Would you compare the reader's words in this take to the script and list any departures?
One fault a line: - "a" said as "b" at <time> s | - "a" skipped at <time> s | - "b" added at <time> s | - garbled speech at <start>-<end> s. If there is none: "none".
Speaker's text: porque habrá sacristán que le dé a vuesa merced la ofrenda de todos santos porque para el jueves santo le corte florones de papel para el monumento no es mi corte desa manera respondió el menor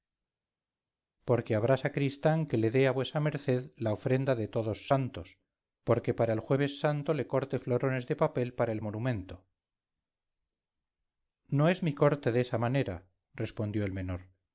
none